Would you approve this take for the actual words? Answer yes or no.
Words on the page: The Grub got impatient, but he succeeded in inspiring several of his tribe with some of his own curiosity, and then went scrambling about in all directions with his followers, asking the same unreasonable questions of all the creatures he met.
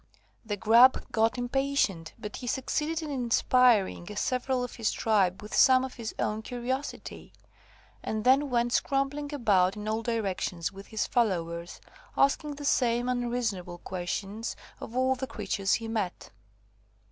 yes